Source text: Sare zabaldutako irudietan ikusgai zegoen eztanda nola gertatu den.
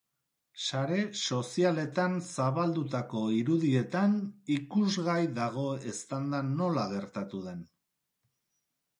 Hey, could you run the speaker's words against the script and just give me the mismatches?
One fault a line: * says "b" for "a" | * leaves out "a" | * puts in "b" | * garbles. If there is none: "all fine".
* puts in "sozialetan"
* says "dago" for "zegoen"